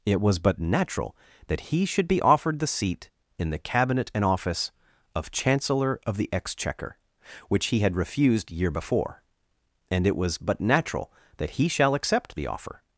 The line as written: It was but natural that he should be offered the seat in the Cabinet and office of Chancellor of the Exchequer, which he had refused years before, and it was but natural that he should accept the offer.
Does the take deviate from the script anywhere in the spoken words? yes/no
yes